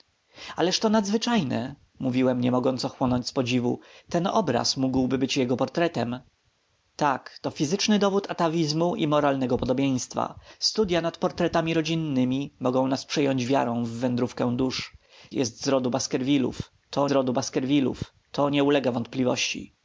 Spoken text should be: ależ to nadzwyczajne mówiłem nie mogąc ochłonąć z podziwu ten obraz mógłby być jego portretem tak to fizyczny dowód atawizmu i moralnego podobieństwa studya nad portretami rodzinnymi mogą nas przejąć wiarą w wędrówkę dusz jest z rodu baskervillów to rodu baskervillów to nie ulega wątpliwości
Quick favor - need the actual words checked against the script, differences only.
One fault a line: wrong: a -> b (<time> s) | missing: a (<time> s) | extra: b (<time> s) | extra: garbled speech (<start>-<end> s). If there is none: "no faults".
no faults